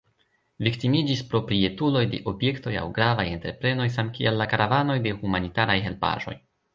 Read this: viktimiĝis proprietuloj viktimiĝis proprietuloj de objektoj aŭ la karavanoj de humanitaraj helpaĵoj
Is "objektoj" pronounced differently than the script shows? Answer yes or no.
no